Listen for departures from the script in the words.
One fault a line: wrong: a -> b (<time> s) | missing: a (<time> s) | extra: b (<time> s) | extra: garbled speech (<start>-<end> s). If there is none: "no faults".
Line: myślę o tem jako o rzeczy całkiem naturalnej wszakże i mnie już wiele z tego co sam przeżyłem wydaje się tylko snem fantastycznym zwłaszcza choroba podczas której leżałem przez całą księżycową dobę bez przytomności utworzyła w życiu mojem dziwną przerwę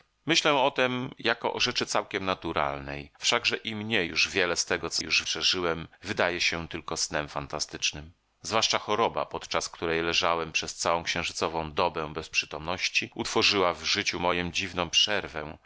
wrong: sam -> już (5.0 s)